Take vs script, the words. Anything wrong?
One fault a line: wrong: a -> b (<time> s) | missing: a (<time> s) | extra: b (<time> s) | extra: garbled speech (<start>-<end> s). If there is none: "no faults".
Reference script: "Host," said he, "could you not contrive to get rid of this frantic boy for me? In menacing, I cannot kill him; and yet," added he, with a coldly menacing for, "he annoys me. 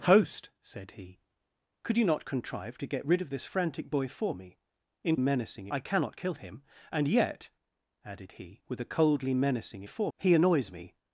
no faults